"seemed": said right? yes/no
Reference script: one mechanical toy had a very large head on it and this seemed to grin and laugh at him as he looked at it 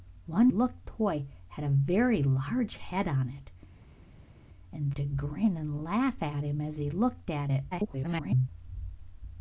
no